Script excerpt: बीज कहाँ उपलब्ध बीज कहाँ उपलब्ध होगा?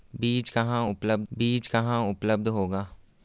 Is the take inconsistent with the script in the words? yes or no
no